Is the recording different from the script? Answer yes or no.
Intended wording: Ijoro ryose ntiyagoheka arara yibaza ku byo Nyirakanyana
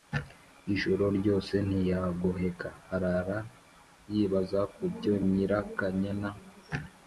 no